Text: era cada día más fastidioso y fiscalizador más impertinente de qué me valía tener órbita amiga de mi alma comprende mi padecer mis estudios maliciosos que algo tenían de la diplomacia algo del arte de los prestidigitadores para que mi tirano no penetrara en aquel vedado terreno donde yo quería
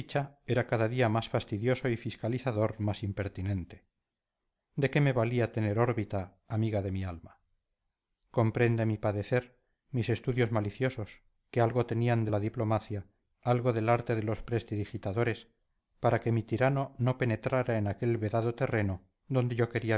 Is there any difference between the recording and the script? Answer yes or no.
no